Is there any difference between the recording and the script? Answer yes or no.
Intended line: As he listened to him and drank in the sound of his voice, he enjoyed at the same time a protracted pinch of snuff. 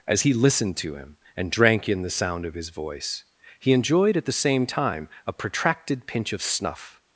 no